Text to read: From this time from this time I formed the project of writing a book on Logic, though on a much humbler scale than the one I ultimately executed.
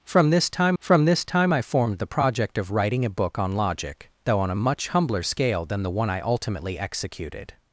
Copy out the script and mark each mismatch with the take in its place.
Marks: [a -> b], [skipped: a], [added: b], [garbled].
From this time from this time I formed the project of writing a book on Logic, though on a much humbler scale than the one I ultimately executed.